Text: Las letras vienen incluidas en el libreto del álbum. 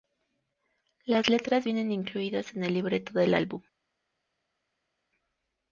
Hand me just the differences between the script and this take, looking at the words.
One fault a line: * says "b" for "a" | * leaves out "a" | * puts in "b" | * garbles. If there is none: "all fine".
all fine